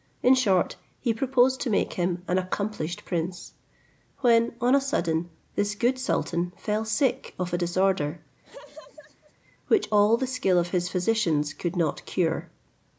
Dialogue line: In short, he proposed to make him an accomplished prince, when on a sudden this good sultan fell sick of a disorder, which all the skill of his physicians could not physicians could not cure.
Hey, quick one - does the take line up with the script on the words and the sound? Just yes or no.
no